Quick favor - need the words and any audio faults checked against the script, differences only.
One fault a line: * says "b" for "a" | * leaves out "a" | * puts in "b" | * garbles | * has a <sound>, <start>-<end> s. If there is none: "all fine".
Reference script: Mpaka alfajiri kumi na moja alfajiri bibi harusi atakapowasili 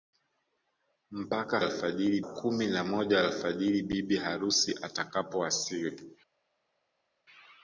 all fine